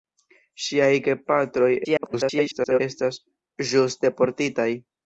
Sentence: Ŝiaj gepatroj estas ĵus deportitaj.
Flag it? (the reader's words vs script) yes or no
yes